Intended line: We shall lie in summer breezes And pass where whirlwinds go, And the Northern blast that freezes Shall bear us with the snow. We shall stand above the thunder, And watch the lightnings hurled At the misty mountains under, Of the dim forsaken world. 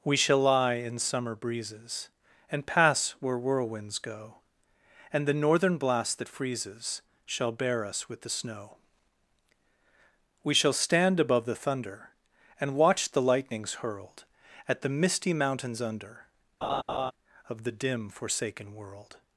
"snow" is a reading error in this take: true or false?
false